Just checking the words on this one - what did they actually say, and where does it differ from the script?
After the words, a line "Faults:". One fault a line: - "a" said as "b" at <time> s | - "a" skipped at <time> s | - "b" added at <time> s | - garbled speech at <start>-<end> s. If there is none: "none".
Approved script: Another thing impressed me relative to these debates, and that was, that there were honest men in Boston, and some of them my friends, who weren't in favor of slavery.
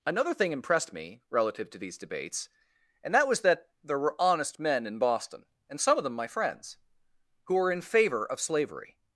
Another thing impressed me relative to these debates, and that was, that there were honest men in Boston, and some of them my friends, who were in favor of slavery.
Faults:
- "weren't" said as "were" at 7.5 s